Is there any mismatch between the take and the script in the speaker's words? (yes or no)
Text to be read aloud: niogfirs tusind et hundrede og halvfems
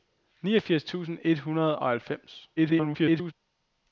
yes